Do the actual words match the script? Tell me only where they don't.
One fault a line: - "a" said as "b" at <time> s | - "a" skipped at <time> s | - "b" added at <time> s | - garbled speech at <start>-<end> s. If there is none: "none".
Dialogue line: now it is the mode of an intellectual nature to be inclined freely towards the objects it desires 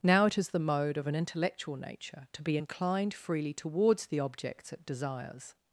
none